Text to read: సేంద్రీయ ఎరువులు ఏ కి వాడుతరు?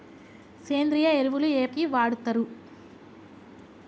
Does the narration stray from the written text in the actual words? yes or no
no